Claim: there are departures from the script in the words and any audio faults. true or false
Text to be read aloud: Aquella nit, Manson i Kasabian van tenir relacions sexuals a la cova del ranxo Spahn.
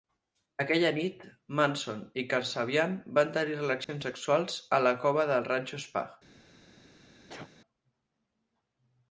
true